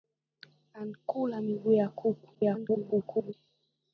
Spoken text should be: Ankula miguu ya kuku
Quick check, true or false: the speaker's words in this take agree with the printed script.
false